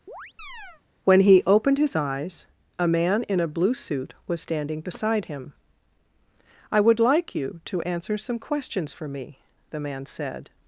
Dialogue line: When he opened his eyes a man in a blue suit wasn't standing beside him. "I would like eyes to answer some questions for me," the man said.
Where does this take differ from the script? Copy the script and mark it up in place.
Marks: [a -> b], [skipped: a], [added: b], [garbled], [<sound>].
[chirp] When he opened his eyes a man in a blue suit [wasn't -> was] standing beside him. "I would like [eyes -> you] to answer some questions for me," the man said.